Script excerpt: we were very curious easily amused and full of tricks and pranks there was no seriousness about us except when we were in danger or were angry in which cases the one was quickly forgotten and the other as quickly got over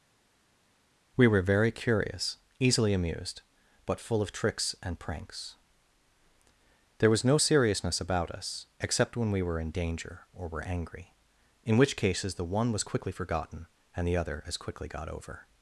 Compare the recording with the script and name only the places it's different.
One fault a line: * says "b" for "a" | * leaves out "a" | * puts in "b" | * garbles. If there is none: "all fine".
* says "but" for "and"